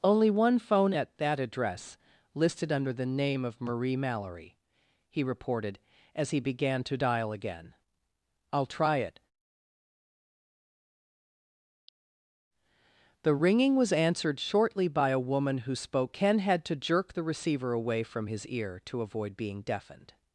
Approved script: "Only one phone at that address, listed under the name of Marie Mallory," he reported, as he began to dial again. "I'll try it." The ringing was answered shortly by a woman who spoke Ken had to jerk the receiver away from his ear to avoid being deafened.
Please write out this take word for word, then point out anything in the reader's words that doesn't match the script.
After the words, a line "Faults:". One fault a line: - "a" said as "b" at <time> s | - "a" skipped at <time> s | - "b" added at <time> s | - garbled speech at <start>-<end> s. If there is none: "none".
"Only one phone at that address, listed under the name of Marie Mallory," he reported, as he began to dial again. "I'll try it." The ringing was answered shortly by a woman who spoke Ken had to jerk the receiver away from his ear to avoid being deafened.
Faults:
none